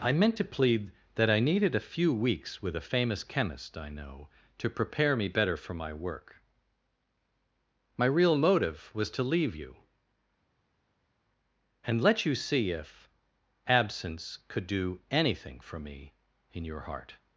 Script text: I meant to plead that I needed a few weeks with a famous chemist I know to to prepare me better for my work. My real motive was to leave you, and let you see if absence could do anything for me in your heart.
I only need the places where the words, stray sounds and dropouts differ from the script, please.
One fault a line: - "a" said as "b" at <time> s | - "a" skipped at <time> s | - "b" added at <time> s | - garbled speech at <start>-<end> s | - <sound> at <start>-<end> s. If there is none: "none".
- "to" skipped at 4.7 s